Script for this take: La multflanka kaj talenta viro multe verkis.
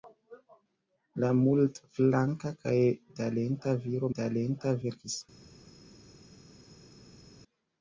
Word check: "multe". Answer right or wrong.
wrong